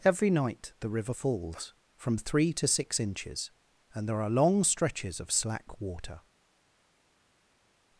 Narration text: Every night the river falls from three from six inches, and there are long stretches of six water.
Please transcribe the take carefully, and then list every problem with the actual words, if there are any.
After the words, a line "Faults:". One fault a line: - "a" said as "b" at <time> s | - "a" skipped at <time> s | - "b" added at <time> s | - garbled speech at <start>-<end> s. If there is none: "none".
Every night the river falls from three to six inches, and there are long stretches of slack water.
Faults:
- "from" said as "to" at 2.5 s
- "six" said as "slack" at 5.3 s